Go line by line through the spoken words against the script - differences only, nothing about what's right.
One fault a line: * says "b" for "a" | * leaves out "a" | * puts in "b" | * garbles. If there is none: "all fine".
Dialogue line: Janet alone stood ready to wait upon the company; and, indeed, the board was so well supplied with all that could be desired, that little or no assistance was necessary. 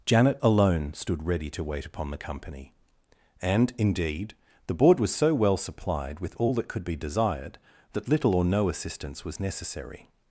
all fine